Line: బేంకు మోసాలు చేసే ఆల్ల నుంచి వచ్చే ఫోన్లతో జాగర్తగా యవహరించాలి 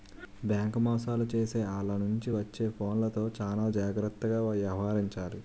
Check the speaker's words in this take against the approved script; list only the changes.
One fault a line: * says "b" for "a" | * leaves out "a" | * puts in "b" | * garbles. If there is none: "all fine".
* puts in "చానా"